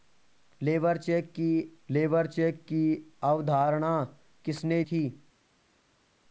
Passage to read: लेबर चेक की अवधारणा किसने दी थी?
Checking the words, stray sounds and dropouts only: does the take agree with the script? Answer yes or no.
no